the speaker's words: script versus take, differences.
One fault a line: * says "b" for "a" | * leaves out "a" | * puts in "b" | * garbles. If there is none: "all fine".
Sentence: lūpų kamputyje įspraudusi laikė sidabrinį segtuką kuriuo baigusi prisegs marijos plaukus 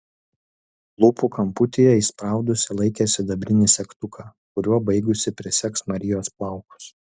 all fine